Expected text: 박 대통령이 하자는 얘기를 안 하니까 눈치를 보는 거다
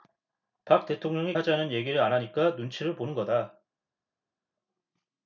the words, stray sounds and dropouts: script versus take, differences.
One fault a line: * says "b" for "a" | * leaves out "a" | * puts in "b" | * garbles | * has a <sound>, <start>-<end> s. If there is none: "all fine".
all fine